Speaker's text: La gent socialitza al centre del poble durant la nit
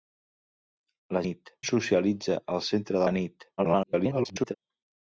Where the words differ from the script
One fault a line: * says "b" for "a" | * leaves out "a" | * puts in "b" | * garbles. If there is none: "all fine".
* says "nit" for "gent"
* leaves out "del poble durant"
* garbles